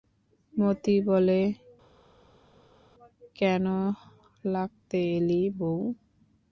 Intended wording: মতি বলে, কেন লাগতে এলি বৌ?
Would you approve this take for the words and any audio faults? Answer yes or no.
yes